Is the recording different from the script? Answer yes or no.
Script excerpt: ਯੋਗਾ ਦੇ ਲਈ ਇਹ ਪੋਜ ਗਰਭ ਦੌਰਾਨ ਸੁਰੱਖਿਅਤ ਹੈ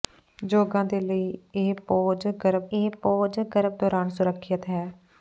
yes